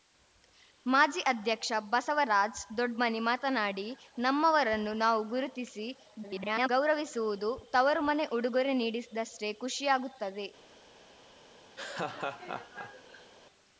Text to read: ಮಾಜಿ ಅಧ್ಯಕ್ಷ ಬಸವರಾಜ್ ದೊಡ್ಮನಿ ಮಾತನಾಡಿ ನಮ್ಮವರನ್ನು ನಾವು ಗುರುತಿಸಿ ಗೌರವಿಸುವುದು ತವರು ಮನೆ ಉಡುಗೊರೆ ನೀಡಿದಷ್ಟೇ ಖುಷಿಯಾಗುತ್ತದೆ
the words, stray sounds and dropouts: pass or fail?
fail